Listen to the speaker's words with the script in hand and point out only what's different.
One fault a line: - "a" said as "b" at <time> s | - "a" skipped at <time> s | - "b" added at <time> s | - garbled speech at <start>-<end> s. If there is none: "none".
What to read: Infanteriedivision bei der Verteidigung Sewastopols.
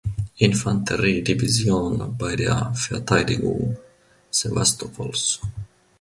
none